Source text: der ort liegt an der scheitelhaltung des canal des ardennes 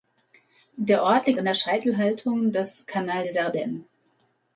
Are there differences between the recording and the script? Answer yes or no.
no